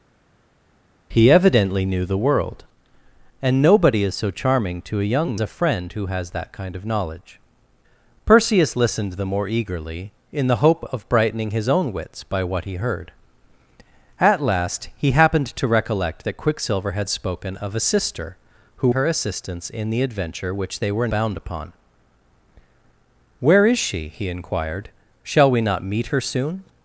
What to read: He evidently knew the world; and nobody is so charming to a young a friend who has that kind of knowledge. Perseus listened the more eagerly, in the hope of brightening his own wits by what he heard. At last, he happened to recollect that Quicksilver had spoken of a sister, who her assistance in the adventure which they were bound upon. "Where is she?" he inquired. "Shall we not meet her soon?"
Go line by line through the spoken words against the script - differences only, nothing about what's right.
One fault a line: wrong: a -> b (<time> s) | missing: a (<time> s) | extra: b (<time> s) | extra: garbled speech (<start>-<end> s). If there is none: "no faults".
no faults